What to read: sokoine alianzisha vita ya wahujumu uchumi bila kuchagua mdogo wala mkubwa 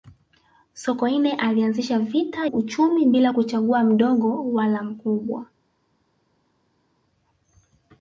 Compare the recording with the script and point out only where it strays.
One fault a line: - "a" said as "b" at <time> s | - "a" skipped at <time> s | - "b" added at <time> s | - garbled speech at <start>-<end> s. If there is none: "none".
- "ya wahujumu" skipped at 2.5 s